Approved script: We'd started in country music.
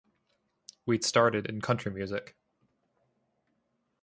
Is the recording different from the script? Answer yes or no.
no